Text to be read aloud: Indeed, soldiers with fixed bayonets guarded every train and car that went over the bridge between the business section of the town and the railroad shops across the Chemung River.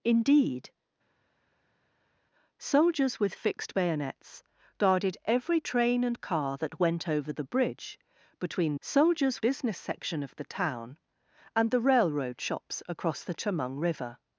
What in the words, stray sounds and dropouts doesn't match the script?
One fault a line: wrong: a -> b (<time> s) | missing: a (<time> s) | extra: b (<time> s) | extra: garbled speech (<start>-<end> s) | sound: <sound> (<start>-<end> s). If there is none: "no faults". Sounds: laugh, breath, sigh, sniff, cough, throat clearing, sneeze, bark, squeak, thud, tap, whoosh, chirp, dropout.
wrong: the -> soldiers (8.8 s)